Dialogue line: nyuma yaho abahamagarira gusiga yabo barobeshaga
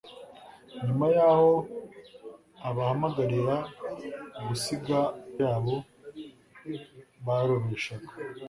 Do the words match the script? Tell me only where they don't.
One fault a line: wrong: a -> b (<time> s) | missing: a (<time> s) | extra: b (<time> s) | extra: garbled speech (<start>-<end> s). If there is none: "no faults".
no faults